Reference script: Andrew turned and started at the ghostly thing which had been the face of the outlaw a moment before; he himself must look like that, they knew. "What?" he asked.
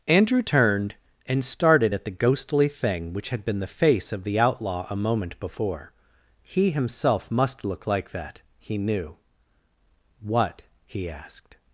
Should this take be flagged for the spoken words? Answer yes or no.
yes